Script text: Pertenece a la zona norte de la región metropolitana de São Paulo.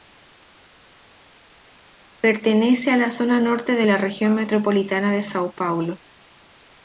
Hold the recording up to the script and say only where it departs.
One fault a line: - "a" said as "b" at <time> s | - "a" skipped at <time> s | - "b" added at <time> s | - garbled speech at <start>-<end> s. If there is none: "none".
none